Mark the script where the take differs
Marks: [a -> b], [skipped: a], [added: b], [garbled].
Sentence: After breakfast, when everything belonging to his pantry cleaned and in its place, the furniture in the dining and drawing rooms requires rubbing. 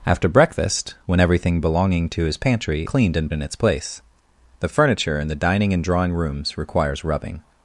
After breakfast, when everything belonging to his pantry cleaned and in its place, the furniture in the dining and drawing rooms requires rubbing.